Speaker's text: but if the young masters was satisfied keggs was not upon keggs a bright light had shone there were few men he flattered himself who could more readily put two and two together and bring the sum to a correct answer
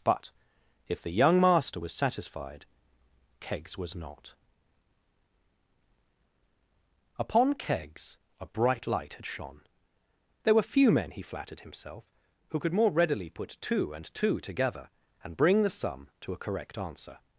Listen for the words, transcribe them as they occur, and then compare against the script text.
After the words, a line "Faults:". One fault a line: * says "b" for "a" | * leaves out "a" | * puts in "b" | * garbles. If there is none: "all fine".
but if the young master was satisfied keggs was not upon keggs a bright light had shone there were few men he flattered himself who could more readily put two and two together and bring the sum to a correct answer
Faults:
* says "master" for "masters"